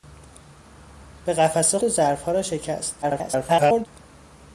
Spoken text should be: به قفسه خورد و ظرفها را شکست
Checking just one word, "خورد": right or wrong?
wrong